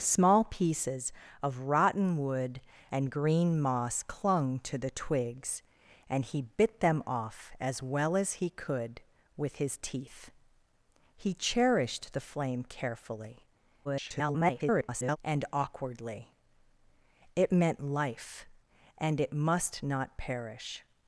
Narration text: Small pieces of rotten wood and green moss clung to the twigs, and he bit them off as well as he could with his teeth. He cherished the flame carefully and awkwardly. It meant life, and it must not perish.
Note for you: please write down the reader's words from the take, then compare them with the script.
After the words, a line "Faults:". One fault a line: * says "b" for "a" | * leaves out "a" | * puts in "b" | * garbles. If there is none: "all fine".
Small pieces of rotten wood and green moss clung to the twigs, and he bit them off as well as he could with his teeth. He cherished the flame carefully [garbled] and awkwardly. It meant life, and it must not perish.
Faults:
* garbles